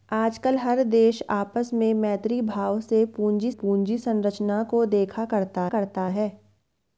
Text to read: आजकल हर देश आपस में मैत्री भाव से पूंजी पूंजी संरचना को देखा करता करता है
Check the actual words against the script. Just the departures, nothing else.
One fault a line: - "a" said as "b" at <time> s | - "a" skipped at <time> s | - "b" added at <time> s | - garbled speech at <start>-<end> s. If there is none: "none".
none